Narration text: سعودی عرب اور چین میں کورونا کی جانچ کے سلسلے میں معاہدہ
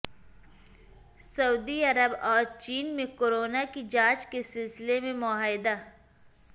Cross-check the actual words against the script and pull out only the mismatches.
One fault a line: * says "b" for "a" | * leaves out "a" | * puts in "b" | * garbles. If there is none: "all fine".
all fine